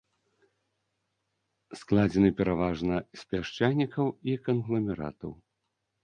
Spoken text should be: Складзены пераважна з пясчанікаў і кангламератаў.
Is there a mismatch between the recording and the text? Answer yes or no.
no